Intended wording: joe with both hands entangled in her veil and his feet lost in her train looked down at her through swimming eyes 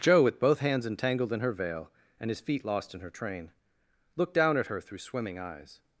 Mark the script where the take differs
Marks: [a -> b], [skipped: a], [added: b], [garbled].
joe with both hands entangled in her veil and his feet lost in her train looked down at her through swimming eyes